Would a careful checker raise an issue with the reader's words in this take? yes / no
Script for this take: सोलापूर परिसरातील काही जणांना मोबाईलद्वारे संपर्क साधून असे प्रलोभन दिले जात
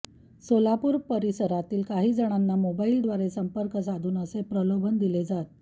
no